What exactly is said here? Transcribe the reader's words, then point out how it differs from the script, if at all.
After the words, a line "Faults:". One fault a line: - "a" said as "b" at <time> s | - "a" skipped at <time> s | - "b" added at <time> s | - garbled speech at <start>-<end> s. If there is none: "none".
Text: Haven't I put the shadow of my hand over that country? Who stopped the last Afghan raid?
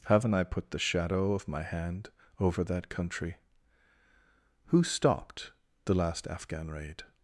Haven't I put the shadow of my hand over that country? Who stopped the last Afghan raid?
Faults:
none